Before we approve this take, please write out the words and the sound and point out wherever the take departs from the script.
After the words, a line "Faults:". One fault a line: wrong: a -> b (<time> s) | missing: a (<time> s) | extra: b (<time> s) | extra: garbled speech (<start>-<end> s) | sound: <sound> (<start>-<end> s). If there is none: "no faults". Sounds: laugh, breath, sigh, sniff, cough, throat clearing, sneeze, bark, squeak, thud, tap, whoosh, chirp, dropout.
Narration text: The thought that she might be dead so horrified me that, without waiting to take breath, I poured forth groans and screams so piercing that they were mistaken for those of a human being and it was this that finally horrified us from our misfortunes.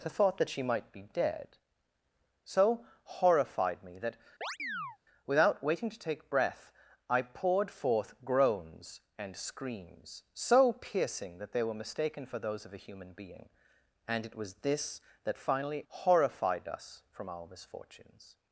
The thought that she might be dead so horrified me that, without waiting to take breath, I poured forth groans and screams so piercing that they were mistaken for those of a human being and it was this that finally horrified us from our misfortunes.
Faults:
sound: chirp (4.4-5.0 s)